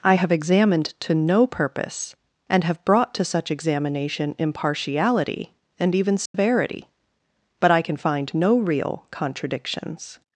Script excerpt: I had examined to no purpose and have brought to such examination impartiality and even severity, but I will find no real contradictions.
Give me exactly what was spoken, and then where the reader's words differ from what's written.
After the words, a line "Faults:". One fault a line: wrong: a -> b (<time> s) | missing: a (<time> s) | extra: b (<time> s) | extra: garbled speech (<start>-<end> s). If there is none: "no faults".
I have examined to no purpose and have brought to such examination impartiality and even severity, but I can find no real contradictions.
Faults:
wrong: had -> have (0.1 s)
wrong: will -> can (7.8 s)